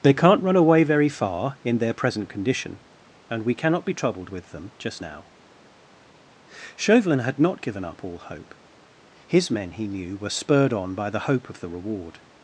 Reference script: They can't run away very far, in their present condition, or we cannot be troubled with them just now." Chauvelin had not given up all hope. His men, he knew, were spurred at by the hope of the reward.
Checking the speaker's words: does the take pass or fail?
fail